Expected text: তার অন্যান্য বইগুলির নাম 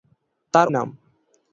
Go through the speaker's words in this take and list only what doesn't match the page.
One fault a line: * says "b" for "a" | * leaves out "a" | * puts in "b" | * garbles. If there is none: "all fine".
* leaves out "অন্যান্য বইগুলির"